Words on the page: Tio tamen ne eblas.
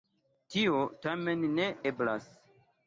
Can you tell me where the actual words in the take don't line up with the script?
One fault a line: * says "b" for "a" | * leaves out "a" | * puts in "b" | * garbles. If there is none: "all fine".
all fine